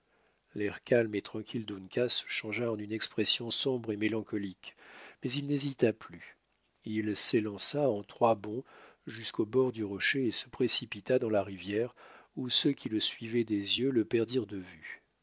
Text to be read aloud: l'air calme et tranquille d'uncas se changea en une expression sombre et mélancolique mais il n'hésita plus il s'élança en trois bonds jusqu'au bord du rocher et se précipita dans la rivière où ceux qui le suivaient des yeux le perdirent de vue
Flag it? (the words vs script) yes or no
no